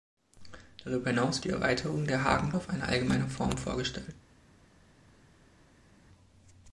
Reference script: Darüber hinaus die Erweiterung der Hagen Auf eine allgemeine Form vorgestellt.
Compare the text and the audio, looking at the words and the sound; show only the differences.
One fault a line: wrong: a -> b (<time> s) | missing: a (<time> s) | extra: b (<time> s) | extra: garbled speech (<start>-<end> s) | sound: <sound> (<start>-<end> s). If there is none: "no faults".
no faults